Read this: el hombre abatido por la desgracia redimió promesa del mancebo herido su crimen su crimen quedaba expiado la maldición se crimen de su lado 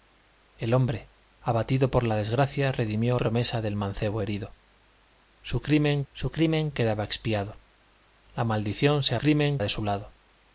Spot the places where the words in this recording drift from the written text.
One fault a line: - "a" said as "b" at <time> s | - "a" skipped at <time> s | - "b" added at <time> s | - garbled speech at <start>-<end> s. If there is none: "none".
none